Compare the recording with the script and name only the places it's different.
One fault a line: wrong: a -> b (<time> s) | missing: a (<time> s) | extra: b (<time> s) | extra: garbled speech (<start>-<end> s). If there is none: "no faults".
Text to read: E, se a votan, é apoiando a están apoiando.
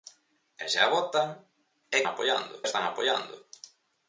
no faults